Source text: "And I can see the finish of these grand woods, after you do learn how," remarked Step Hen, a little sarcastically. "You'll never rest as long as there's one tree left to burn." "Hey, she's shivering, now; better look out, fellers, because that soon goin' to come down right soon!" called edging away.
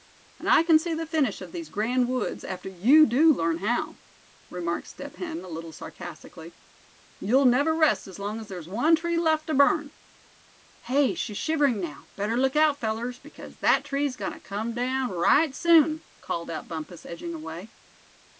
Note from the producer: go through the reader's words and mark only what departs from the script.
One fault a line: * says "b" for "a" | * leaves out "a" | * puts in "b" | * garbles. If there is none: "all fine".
* says "tree's" for "soon"
* puts in "out Bumpus"